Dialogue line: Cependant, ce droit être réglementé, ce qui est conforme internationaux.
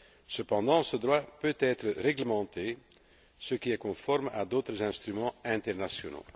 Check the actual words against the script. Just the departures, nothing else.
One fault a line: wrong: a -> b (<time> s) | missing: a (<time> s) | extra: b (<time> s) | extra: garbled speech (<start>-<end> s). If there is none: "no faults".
extra: peut (1.4 s)
extra: à d'autres instruments (4.3 s)